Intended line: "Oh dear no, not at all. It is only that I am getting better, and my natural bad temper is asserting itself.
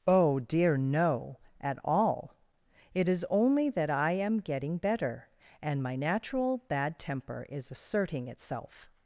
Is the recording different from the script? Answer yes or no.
yes